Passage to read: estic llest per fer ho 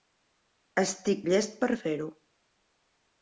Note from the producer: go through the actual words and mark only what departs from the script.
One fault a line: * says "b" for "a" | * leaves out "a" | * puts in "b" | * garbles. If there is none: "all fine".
all fine